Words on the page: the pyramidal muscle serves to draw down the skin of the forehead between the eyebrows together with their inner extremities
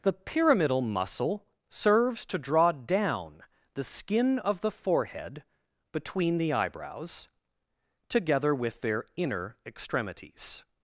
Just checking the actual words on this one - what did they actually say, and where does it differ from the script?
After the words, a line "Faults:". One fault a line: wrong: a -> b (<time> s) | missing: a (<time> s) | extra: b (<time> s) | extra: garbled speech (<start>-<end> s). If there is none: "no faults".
the pyramidal muscle serves to draw down the skin of the forehead between the eyebrows together with their inner extremities
Faults:
no faults